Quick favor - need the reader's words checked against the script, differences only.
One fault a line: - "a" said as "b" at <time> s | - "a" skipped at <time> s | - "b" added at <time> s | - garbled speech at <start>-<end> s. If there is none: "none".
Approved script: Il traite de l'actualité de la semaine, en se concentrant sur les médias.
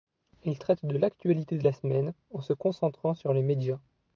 none